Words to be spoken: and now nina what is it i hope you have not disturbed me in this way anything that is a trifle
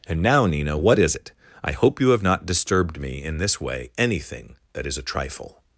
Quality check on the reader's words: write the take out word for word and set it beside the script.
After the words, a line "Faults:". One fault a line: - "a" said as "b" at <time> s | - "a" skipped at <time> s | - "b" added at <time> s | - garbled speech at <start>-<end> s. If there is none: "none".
and now nina what is it i hope you have not disturbed me in this way anything that is a trifle
Faults:
none